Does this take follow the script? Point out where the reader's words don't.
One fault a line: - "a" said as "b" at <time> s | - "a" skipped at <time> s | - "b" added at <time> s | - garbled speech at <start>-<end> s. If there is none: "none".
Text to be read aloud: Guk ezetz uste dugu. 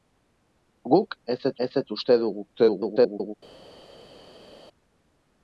- "ezetz" added at 1.7 s
- garbled speech at 2.5-3.3 s